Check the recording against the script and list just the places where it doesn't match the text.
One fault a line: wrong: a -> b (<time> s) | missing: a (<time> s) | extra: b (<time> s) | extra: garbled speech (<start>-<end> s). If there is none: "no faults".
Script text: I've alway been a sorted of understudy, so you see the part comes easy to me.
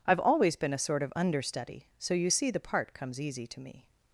wrong: alway -> always (0.2 s)
wrong: sorted -> sort (0.8 s)